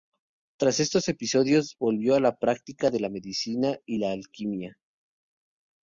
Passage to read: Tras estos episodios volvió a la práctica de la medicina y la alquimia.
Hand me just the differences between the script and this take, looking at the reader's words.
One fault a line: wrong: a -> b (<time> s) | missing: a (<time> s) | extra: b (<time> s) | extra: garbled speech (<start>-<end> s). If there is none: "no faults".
no faults